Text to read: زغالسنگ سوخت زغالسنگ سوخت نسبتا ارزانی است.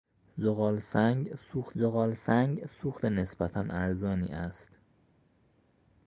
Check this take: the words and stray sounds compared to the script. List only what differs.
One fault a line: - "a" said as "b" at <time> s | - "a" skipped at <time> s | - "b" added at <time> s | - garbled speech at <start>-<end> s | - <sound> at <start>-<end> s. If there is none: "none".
none